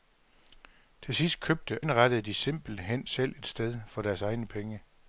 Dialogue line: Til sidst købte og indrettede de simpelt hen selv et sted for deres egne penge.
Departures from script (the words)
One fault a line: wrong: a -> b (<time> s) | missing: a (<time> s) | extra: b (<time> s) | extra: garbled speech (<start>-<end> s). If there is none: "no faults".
missing: og (1.8 s)